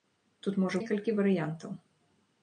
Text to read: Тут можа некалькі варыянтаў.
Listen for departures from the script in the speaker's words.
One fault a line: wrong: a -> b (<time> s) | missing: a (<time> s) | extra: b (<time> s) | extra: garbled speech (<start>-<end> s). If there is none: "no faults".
no faults